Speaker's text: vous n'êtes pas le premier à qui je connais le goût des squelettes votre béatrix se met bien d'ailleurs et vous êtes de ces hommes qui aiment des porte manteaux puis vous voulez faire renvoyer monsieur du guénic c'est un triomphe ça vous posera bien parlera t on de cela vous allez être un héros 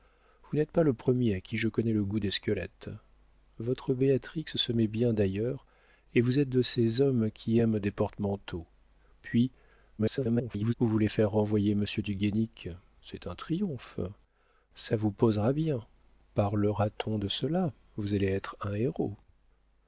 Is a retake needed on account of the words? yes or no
yes